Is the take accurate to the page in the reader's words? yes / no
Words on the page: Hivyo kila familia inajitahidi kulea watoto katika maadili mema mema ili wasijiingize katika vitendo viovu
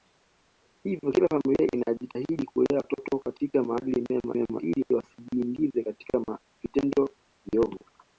yes